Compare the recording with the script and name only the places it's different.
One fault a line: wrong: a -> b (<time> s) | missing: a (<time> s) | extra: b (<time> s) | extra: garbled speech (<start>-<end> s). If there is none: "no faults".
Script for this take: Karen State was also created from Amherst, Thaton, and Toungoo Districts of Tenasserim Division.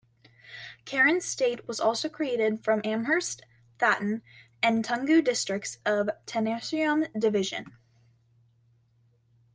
no faults